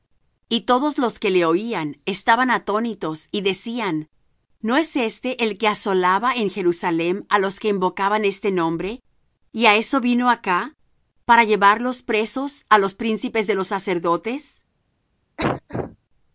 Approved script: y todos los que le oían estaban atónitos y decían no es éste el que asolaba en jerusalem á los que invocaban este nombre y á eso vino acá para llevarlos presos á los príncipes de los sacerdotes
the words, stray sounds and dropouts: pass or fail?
fail